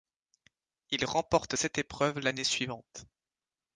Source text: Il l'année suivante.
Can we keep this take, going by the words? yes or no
no